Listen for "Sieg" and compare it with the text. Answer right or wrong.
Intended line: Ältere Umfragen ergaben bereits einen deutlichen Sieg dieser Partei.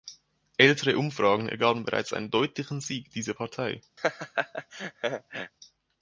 right